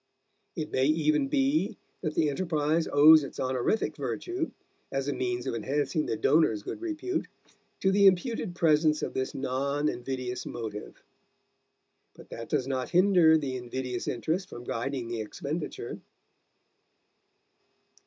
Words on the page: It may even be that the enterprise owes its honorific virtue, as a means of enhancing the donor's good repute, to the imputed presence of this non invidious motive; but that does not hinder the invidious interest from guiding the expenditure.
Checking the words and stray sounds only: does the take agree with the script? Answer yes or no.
yes